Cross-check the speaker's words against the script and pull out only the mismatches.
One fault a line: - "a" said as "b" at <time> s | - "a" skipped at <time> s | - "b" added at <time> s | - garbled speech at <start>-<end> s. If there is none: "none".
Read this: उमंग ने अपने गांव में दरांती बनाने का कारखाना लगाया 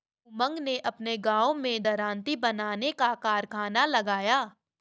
none